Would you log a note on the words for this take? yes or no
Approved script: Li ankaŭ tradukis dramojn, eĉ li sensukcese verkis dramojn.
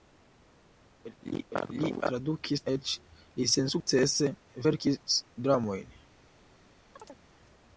yes